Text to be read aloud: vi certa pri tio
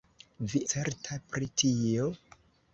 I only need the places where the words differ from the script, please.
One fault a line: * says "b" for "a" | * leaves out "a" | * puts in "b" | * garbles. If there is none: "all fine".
all fine